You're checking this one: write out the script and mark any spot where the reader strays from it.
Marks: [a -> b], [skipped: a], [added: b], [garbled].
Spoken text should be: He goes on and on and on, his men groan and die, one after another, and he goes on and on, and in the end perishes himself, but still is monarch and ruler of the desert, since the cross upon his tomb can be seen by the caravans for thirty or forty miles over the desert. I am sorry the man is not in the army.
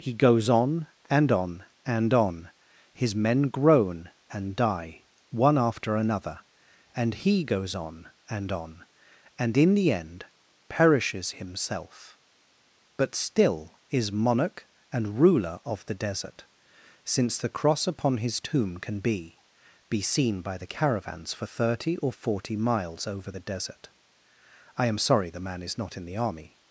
He goes on and on and on, his men groan and die, one after another, and he goes on and on, and in the end perishes himself, but still is monarch and ruler of the desert, since the cross upon his tomb can be [added: be] seen by the caravans for thirty or forty miles over the desert. I am sorry the man is not in the army.